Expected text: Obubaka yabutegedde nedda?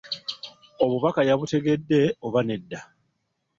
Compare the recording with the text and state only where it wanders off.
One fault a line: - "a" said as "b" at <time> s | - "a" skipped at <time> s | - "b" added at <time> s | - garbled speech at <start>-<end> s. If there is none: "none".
- "oba" added at 2.2 s